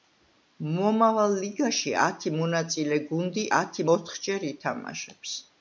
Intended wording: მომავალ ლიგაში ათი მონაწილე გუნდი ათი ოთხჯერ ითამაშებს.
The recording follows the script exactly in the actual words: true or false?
true